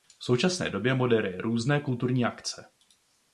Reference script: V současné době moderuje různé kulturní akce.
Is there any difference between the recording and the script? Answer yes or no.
no